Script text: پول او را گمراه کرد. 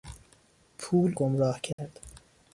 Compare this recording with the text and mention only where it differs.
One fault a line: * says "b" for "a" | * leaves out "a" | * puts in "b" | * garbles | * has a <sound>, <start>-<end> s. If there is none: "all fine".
* leaves out "او را"
* has a dropout, 1.7-1.8 s